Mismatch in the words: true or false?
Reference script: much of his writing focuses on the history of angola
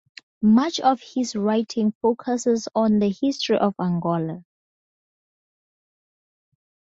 false